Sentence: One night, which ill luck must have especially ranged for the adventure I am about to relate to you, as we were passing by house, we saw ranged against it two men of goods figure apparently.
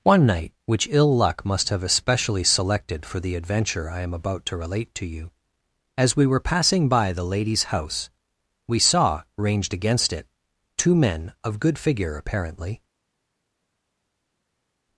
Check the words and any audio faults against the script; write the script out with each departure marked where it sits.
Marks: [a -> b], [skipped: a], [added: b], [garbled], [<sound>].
One night, which ill luck must have especially [ranged -> selected] for the adventure I am about to relate to you, as we were passing by [added: the lady's] house, we saw ranged against it two men of [goods -> good] figure apparently.